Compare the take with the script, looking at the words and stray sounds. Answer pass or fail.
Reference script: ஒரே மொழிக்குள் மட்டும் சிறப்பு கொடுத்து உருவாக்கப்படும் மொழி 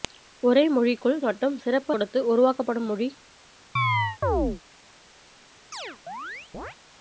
fail